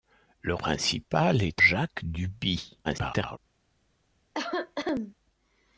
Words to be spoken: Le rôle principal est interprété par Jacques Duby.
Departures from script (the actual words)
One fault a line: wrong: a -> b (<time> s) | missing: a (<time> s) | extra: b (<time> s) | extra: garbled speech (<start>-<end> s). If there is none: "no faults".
missing: rôle (0.6 s)
missing: interprété par (1.6 s)
extra: garbled speech (2.8-3.4 s)